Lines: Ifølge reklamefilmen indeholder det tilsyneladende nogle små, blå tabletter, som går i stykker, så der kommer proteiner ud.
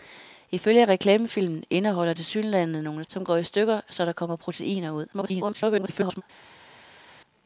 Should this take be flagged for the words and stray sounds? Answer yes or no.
yes